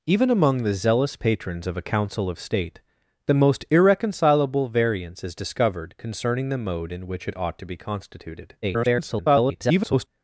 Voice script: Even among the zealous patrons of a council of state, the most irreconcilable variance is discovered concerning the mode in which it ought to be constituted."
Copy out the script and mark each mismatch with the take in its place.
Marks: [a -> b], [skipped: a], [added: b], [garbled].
Even among the zealous patrons of a council of state, the most irreconcilable variance is discovered concerning the mode in which it ought to be constituted." [garbled]